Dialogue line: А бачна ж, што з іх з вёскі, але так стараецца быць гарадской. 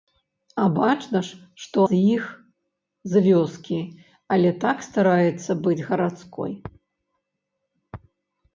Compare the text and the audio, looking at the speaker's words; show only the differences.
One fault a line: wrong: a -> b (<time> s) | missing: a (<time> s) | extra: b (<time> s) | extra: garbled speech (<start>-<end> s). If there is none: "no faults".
no faults